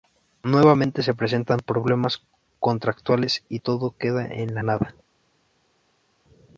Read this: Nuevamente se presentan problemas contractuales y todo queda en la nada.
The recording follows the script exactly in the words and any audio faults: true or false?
true